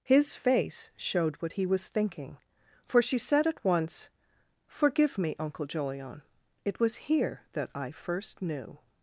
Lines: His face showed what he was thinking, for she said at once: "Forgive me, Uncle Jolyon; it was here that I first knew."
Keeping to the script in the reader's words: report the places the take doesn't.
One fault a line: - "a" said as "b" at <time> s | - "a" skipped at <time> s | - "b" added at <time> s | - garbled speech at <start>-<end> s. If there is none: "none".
none